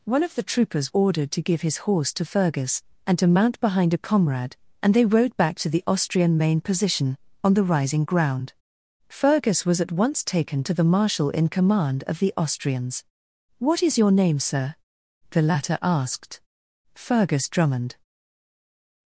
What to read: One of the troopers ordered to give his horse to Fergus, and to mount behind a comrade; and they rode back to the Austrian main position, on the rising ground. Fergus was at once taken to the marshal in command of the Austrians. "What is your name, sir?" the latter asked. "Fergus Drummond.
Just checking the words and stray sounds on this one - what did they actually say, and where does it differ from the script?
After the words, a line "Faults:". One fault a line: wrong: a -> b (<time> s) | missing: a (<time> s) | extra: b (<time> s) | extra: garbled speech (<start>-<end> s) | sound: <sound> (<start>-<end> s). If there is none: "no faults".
One of the troopers ordered to give his horse to Fergus, and to mount behind a comrade; and they rode back to the Austrian main position, on the rising ground. Fergus was at once taken to the marshal in command of the Austrians. "What is your name, sir?" the latter asked. "Fergus Drummond.
Faults:
no faults